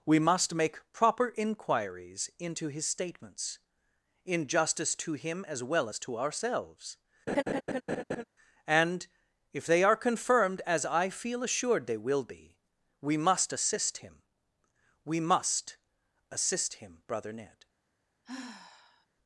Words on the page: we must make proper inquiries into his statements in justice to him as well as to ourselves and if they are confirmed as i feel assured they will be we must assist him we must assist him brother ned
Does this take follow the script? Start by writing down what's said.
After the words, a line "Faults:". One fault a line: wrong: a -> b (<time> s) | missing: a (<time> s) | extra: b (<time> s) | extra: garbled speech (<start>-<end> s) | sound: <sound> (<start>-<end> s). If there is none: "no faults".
we must make proper inquiries into his statements in justice to him as well as to ourselves and if they are confirmed as i feel assured they will be we must assist him we must assist him brother ned
Faults:
sound: laugh (7.3-8.2 s)
sound: sigh (18.2-19.1 s)